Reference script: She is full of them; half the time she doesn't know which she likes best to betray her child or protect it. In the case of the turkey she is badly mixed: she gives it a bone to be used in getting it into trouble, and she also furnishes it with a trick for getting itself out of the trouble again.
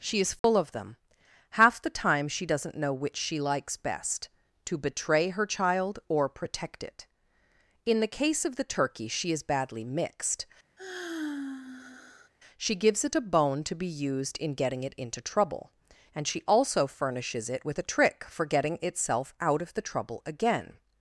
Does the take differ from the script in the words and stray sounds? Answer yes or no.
yes